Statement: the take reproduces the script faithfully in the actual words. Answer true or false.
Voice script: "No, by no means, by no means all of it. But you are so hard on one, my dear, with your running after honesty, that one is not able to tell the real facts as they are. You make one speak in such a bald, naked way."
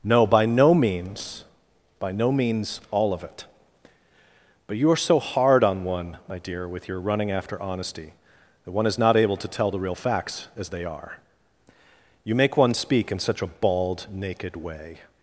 true